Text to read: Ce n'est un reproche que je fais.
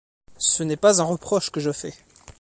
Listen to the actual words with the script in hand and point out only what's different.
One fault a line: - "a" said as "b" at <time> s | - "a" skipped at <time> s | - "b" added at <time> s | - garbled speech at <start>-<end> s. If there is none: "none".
- "pas" added at 0.8 s